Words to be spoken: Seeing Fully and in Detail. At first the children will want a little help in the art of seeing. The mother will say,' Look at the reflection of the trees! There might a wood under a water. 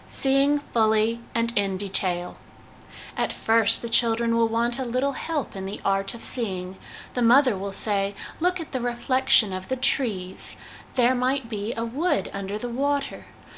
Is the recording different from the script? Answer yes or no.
yes